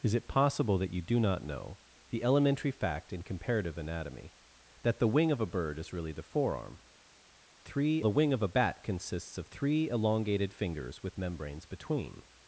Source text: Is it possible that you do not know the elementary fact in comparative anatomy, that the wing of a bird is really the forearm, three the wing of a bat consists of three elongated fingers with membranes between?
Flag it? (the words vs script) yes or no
no